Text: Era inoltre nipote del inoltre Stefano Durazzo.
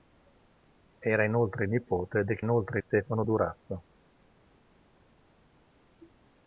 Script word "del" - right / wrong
right